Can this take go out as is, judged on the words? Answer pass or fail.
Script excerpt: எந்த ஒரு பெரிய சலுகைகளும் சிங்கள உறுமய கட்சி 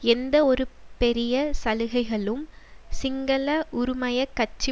pass